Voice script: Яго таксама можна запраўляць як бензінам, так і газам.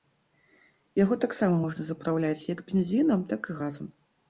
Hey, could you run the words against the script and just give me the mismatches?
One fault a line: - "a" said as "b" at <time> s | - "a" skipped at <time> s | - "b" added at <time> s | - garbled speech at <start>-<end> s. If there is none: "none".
none